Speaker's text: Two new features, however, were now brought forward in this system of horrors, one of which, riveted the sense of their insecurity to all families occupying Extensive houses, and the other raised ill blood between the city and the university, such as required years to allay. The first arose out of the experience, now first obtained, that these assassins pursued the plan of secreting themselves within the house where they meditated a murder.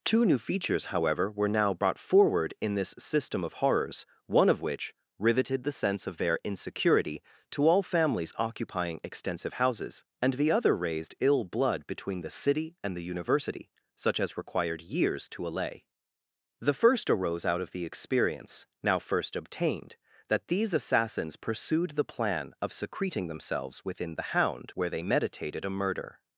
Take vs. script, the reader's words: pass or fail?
fail